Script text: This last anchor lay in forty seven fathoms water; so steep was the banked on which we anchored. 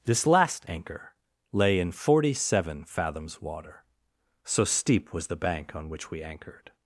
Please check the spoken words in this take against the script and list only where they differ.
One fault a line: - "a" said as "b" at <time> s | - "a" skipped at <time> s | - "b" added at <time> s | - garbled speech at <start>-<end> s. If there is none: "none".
- "banked" said as "bank" at 5.4 s